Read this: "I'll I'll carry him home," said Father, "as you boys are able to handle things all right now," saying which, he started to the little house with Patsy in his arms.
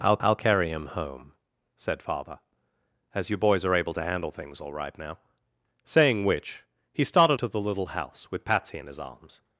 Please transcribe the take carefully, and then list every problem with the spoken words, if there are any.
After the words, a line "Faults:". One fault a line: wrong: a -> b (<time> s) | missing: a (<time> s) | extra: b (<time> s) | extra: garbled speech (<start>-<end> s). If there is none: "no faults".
"I'll I'll carry him home," said Father, "as you boys are able to handle things all right now," saying which, he started to the little house with Patsy in his arms.
Faults:
no faults